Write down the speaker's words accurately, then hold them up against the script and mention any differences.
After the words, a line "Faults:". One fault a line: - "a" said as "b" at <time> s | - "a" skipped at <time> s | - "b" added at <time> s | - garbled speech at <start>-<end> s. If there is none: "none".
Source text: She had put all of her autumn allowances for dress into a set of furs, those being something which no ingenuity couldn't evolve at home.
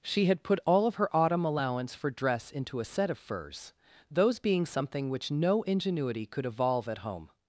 She had put all of her autumn allowance for dress into a set of furs, those being something which no ingenuity could evolve at home.
Faults:
- "allowances" said as "allowance" at 1.4 s
- "couldn't" said as "could" at 6.3 s